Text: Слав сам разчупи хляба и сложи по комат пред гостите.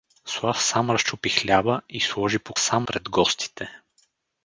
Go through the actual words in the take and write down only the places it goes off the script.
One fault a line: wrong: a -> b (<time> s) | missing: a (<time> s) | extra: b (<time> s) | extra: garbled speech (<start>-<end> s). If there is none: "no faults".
wrong: комат -> сам (2.6 s)